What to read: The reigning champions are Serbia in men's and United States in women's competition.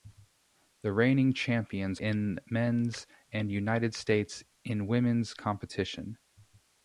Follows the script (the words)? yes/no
no